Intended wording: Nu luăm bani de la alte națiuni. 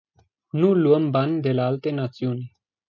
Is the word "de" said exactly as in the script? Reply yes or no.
yes